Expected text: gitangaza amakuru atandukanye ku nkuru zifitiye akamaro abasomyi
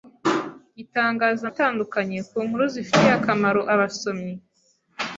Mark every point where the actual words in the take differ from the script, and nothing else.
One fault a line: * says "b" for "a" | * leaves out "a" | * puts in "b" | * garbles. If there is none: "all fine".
* leaves out "amakuru"